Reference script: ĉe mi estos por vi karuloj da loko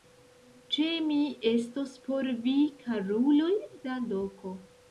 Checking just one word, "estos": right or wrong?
right